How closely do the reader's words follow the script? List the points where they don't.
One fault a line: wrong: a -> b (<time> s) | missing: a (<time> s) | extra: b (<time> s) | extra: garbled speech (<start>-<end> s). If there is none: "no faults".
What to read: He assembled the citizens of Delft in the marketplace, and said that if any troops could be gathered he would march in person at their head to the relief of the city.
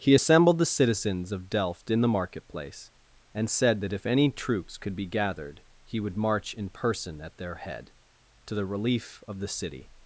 no faults